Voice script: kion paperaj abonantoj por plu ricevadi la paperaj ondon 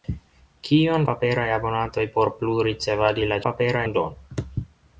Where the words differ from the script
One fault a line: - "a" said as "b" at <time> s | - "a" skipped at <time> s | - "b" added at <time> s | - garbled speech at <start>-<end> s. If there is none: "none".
none